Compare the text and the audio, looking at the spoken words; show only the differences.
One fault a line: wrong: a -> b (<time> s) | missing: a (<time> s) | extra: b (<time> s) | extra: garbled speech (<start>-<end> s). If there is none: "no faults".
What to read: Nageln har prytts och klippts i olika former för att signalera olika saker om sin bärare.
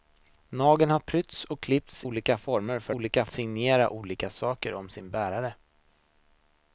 missing: i (2.0 s)
wrong: att -> olika (2.9 s)